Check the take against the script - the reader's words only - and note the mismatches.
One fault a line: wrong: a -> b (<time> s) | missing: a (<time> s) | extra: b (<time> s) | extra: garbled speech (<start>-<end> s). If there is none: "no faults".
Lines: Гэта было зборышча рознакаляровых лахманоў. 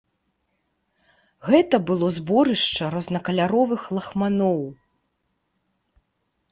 no faults